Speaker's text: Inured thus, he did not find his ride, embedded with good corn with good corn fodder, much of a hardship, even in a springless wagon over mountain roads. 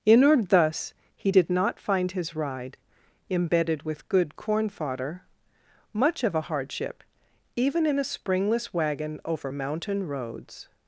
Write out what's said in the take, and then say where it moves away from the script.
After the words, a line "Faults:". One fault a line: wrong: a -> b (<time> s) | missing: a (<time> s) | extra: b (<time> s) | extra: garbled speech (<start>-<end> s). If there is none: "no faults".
Inured thus, he did not find his ride, embedded with good corn fodder, much of a hardship, even in a springless wagon over mountain roads.
Faults:
missing: with good corn (4.7 s)